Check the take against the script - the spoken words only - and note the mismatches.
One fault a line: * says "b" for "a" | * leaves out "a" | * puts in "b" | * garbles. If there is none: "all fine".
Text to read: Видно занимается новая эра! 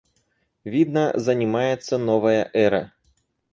all fine